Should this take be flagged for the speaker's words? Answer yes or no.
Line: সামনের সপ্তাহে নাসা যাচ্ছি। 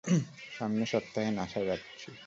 no